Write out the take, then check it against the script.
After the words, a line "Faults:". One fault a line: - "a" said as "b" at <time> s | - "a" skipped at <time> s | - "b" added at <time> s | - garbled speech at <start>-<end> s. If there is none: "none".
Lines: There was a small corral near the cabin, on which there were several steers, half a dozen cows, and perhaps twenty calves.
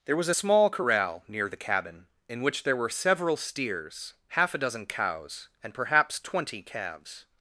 There was a small corral near the cabin, in which there were several steers, half a dozen cows, and perhaps twenty calves.
Faults:
- "on" said as "in" at 2.3 s